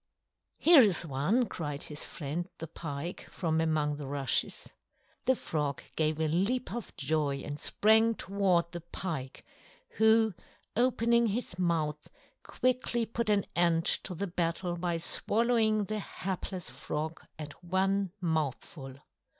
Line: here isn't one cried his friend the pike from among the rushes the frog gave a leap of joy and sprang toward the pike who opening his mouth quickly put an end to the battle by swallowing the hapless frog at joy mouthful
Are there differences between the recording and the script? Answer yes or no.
yes